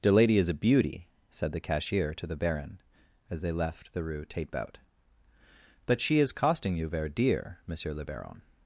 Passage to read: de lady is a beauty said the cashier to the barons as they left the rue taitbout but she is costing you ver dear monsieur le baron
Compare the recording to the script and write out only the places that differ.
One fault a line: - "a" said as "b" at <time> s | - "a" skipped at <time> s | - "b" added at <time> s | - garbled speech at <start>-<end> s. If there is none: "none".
- "barons" said as "baron" at 2.4 s